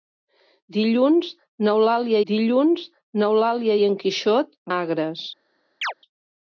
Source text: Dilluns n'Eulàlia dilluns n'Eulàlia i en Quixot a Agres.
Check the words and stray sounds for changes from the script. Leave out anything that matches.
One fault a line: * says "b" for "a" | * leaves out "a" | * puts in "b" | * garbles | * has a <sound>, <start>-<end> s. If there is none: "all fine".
* has a chirp, 5.8-5.9 s